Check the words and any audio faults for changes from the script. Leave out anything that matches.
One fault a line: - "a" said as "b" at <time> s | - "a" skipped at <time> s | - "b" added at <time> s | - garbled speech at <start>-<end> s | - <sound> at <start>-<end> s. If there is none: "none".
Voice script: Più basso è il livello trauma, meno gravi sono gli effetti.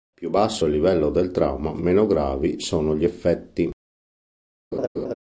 - "del" added at 1.1 s
- laugh at 4.7-5.1 s